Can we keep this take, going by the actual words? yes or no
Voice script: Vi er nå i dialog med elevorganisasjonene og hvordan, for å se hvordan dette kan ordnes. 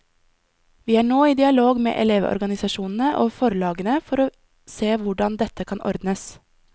no